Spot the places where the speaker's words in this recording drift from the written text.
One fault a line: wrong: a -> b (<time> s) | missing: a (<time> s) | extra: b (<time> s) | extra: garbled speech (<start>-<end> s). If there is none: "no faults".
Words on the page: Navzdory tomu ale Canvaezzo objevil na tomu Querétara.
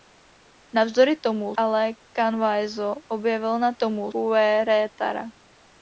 no faults